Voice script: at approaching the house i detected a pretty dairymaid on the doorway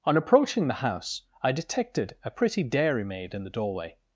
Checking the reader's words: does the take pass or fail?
fail